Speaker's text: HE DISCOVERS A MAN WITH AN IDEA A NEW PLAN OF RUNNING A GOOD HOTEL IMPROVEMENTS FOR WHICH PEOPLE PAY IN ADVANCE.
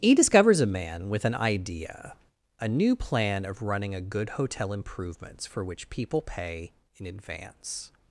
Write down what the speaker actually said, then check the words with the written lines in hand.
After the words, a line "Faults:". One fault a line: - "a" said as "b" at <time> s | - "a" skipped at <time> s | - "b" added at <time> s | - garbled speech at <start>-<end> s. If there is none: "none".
HE DISCOVERS A MAN WITH AN IDEA A NEW PLAN OF RUNNING A GOOD HOTEL IMPROVEMENTS FOR WHICH PEOPLE PAY IN ADVANCE.
Faults:
none